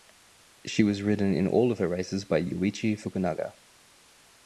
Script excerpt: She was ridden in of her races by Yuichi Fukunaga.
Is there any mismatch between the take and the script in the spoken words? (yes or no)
yes